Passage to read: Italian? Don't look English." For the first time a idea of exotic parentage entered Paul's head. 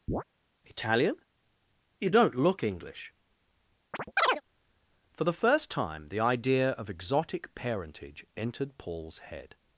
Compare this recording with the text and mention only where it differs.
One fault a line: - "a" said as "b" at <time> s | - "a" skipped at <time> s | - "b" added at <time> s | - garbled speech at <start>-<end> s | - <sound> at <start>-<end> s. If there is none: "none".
- chirp at 0.1-0.2 s
- "You" added at 2.0 s
- chirp at 3.9-4.4 s
- "a" said as "the" at 6.1 s